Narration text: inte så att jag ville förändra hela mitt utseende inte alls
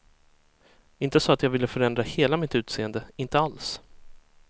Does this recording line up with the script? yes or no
yes